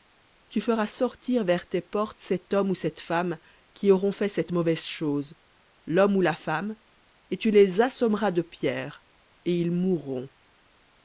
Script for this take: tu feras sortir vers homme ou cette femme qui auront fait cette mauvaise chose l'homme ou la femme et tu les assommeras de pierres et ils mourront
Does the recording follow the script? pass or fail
fail